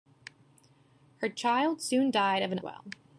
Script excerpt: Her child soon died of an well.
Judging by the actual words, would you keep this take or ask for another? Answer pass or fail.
pass